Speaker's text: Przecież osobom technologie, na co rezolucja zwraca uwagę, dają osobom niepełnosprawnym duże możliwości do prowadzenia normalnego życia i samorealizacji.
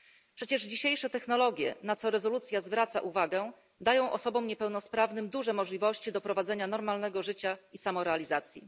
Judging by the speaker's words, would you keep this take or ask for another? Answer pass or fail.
fail